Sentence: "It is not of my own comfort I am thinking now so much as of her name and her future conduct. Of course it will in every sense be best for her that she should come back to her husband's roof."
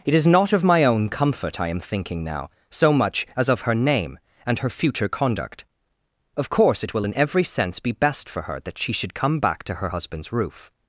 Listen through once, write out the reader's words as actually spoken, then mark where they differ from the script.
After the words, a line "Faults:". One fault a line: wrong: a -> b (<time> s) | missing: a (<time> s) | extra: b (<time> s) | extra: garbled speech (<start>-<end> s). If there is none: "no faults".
"It is not of my own comfort I am thinking now so much as of her name and her future conduct. Of course it will in every sense be best for her that she should come back to her husband's roof."
Faults:
no faults